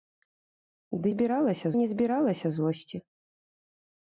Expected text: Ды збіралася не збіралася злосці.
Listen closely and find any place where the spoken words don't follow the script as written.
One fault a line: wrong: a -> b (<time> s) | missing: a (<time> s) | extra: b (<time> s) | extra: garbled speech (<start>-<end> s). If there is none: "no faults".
no faults